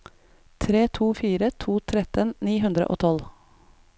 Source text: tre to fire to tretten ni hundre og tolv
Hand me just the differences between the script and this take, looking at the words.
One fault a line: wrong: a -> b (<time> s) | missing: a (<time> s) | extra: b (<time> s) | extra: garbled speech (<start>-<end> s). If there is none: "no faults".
no faults